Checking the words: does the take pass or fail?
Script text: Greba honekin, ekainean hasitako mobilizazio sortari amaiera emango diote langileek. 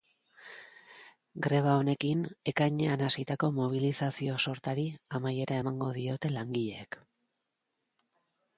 pass